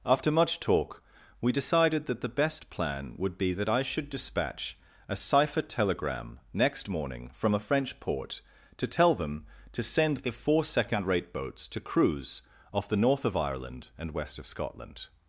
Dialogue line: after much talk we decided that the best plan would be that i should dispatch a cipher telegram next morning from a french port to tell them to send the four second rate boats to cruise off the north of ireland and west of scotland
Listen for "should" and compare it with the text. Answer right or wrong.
right